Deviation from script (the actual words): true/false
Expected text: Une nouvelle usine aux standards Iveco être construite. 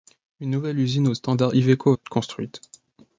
false